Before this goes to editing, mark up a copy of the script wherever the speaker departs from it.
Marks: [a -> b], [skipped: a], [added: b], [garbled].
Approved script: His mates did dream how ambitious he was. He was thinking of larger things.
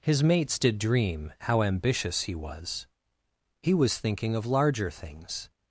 His mates did dream how ambitious he was. He was thinking of larger things.